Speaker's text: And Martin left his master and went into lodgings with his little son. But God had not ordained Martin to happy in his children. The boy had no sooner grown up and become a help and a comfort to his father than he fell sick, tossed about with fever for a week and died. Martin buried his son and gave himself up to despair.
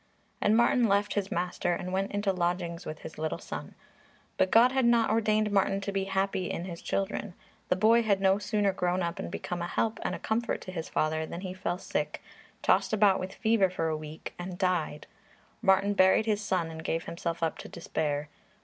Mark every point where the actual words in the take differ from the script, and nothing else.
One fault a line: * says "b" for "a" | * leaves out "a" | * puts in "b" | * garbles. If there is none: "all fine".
* puts in "be"